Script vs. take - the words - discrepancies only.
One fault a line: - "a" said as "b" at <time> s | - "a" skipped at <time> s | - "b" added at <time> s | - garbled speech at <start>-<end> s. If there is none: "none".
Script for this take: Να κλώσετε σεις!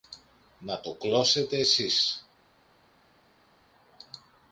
- "το" added at 0.8 s